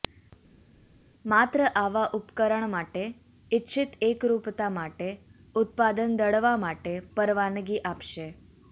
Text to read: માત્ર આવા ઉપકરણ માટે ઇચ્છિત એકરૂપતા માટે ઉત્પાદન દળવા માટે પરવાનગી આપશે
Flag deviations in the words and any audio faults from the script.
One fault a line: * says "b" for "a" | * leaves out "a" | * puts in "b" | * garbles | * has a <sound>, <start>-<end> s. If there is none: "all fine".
all fine